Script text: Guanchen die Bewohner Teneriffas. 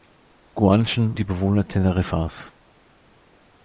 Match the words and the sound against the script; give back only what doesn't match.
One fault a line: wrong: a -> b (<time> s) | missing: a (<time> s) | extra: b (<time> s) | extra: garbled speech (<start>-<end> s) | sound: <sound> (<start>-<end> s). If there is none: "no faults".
no faults